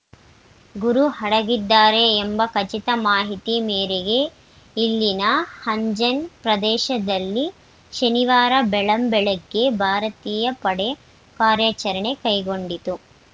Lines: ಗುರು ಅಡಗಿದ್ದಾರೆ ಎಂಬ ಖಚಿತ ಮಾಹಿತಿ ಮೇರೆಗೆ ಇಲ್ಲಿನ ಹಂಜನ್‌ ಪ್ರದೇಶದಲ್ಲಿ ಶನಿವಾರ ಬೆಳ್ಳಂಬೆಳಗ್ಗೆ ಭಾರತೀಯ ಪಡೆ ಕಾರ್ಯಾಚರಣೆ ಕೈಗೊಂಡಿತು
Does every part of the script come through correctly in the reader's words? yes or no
yes